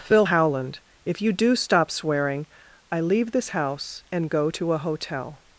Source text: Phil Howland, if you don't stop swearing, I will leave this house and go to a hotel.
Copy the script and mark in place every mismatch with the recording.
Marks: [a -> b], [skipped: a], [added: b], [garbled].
Phil Howland, if you [don't -> do] stop swearing, I [skipped: will] leave this house and go to a hotel.